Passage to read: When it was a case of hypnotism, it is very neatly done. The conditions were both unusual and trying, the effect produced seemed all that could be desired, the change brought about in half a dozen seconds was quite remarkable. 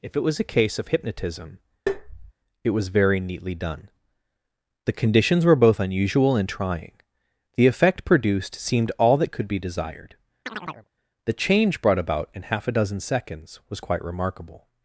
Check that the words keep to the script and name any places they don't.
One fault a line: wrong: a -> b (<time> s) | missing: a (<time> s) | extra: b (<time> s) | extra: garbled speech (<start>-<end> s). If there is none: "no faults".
wrong: When -> If (0.0 s)
wrong: is -> was (2.7 s)